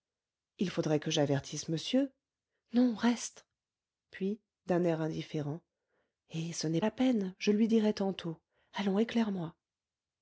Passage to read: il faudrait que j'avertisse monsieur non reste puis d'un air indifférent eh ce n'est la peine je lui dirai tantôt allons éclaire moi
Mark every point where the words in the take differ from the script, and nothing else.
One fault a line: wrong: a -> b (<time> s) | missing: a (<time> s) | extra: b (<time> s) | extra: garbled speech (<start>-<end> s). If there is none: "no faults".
no faults